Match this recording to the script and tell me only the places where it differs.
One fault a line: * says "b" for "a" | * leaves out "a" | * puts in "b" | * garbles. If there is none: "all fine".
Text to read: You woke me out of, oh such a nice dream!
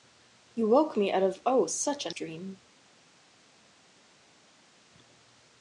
* leaves out "nice"